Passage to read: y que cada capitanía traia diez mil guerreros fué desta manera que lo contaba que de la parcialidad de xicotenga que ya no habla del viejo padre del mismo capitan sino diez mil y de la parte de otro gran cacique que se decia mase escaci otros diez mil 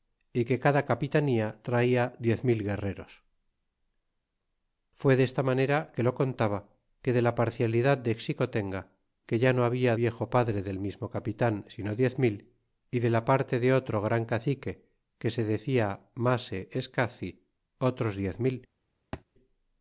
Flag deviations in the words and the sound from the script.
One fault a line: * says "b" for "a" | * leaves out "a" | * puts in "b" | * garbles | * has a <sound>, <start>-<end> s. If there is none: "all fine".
* leaves out "del"
* has a thud, 19.1-19.2 s